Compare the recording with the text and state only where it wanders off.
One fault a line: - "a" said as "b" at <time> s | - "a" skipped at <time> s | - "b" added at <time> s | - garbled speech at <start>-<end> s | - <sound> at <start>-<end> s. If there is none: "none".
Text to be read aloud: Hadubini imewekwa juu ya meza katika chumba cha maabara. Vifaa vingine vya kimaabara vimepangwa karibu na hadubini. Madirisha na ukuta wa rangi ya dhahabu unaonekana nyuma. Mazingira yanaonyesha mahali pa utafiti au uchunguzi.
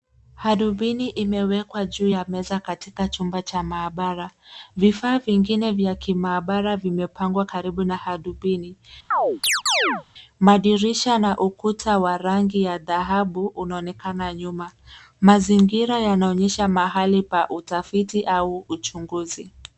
- chirp at 9.1-10.0 s